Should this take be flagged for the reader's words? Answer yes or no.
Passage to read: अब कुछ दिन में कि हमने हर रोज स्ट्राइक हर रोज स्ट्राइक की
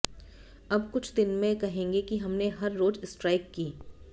yes